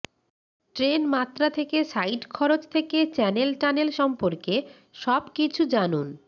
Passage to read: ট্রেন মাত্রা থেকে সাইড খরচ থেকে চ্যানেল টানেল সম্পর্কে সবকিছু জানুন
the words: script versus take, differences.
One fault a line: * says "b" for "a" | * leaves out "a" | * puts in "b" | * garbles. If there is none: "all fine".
all fine